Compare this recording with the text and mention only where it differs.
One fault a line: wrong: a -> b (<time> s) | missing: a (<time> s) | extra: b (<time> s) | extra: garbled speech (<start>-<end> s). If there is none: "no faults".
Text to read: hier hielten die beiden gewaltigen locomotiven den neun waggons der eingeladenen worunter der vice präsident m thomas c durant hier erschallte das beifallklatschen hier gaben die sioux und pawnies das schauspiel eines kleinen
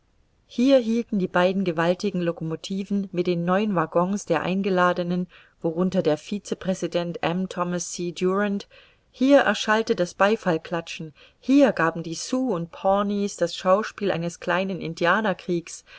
extra: mit (3.1 s)